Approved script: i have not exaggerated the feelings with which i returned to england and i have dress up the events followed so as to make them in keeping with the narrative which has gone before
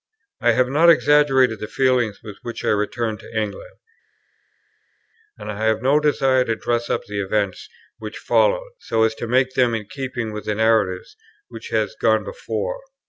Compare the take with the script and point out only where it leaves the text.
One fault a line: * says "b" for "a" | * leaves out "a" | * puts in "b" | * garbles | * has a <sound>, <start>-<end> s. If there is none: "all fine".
* puts in "no desire to"
* puts in "which"